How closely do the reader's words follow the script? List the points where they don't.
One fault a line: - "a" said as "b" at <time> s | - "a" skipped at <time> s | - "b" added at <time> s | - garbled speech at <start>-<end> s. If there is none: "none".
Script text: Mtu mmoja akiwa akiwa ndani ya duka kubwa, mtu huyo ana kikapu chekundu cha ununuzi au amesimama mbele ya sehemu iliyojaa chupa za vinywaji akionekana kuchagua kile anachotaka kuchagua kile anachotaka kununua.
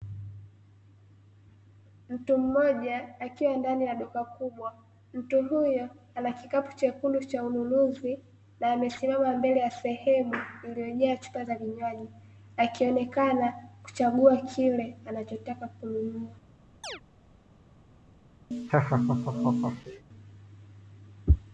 - "akiwa" skipped at 3.6 s
- "au" said as "na" at 8.6 s
- "kuchagua kile anachotaka" skipped at 15.7 s